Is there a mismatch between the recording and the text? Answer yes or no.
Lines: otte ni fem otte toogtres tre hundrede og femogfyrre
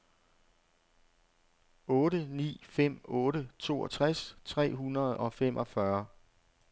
no